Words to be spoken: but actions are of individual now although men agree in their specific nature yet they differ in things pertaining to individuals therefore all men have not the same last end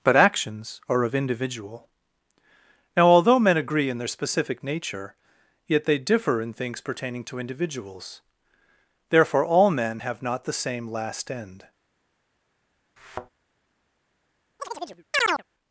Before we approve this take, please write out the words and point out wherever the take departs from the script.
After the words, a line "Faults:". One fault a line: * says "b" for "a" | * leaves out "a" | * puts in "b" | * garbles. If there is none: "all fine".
but actions are of individual now although men agree in their specific nature yet they differ in things pertaining to individuals therefore all men have not the same last end
Faults:
all fine